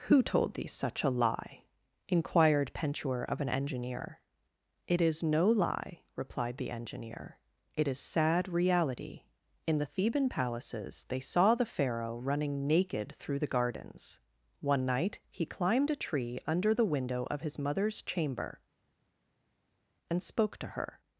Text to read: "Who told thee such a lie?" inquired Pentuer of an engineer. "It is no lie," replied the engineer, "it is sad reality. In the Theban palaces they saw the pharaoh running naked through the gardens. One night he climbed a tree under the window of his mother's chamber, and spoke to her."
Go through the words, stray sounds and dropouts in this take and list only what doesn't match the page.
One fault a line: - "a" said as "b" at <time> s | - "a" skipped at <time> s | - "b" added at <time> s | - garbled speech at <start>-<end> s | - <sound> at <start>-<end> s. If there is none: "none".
none